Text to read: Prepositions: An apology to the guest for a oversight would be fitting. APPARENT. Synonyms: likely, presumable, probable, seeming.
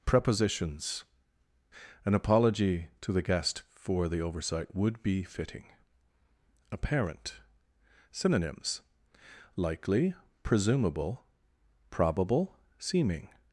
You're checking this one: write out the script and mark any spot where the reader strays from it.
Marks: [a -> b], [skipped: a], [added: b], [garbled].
Prepositions: An apology to the guest for [a -> the] oversight would be fitting. APPARENT. Synonyms: likely, presumable, probable, seeming.